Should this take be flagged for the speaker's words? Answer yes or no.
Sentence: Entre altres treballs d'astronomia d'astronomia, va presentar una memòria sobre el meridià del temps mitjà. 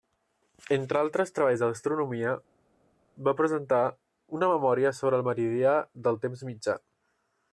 yes